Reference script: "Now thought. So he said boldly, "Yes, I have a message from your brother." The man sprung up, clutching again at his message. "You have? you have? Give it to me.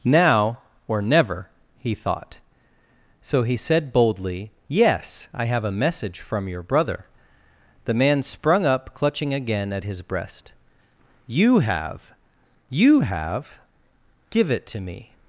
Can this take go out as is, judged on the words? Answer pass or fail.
fail